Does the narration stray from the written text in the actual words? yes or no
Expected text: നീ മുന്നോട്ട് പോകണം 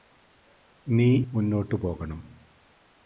no